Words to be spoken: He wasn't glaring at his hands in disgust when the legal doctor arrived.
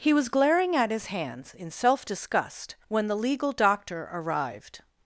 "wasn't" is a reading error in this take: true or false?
true